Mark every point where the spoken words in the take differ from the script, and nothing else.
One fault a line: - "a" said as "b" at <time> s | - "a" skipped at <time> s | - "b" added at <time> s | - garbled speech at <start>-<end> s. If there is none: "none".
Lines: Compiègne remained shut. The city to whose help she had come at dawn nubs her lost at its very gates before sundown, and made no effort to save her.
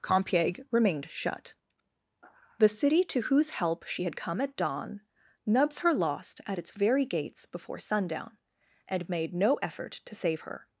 none